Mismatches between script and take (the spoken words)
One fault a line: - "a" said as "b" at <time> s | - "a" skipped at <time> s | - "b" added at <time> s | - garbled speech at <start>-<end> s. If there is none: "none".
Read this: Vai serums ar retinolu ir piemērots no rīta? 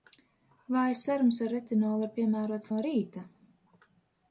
none